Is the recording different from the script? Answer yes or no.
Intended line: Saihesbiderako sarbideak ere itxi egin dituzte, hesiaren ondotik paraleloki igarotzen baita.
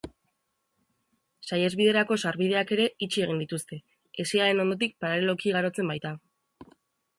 no